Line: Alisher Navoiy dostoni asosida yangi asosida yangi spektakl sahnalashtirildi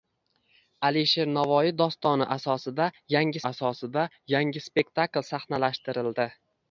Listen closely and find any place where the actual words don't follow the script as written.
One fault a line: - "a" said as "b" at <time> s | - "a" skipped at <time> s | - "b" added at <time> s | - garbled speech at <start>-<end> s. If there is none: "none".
none